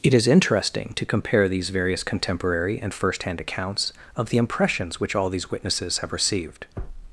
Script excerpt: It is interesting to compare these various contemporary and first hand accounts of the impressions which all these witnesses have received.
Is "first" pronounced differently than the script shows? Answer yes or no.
no